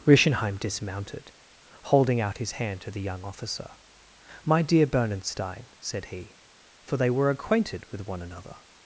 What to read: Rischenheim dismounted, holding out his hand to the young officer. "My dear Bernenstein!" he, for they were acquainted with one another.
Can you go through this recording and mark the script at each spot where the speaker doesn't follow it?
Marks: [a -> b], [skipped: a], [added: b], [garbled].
Rischenheim dismounted, holding out his hand to the young officer. "My dear Bernenstein!" [added: said] he, for they were acquainted with one another.